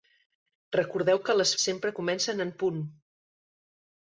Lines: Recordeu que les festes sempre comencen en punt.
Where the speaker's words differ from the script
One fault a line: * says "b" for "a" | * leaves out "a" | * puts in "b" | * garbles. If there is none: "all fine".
* leaves out "festes"